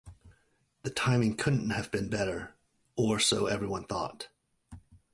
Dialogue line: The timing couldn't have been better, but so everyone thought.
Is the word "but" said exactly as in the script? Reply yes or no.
no